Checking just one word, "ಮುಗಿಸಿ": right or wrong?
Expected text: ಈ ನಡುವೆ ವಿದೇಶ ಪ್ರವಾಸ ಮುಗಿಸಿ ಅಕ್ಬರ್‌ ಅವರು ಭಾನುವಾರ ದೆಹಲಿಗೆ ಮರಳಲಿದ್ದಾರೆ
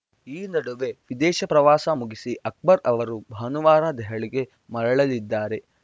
right